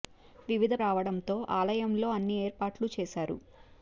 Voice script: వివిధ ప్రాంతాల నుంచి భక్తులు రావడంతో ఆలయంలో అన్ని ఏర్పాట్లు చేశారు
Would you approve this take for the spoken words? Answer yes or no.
no